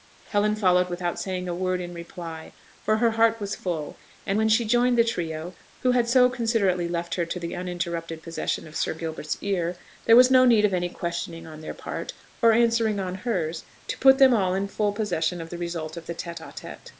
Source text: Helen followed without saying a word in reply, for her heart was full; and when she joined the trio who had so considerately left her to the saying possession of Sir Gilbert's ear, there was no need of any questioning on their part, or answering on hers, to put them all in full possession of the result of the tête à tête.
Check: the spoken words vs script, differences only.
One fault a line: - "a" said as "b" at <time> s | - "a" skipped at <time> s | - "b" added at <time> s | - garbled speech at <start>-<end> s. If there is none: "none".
- "saying" said as "uninterrupted" at 7.5 s